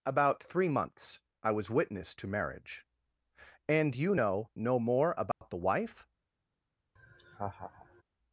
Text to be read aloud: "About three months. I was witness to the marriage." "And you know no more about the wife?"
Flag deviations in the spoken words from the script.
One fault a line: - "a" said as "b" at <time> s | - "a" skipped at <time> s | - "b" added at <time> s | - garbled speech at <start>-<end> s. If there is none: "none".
- "the" skipped at 2.3 s